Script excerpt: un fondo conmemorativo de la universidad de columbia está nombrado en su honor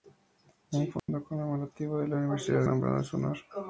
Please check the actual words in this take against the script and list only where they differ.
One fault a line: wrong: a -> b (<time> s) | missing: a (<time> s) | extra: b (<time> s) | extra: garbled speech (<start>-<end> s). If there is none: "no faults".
missing: de columbia está (2.6 s)